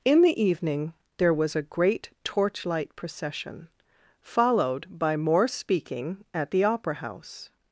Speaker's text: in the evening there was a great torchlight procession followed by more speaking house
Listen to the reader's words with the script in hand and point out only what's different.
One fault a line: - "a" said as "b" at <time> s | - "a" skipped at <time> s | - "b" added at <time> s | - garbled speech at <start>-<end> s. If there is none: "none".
- "at the opera" added at 6.3 s